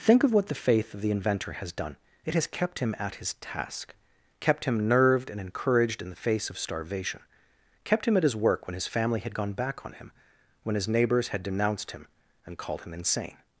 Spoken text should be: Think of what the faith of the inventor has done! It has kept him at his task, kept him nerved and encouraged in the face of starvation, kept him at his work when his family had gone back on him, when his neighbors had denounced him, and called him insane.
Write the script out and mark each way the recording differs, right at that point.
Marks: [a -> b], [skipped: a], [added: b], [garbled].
Think of what the faith of the inventor has done! It has kept him at his task, kept him nerved and encouraged in the face of starvation, kept him at his work when his family had gone back on him, when his neighbors had denounced him, and called him insane.